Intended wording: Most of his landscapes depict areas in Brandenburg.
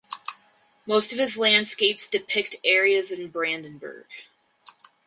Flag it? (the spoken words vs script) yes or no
no